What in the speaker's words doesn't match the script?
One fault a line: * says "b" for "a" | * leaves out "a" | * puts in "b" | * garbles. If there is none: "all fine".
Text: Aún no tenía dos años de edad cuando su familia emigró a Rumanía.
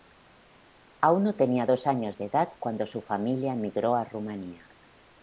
all fine